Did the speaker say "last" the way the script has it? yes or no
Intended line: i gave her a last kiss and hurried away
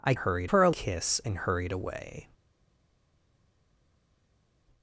no